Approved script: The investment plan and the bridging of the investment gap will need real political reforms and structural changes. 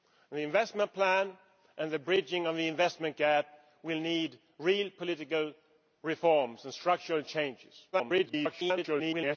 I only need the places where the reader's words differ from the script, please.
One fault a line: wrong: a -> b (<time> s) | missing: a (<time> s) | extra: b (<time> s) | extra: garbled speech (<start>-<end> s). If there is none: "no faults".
extra: garbled speech (7.9-9.4 s)